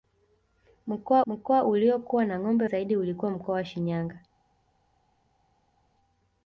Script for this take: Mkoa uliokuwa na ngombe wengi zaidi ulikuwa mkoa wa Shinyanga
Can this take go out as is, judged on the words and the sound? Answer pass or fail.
fail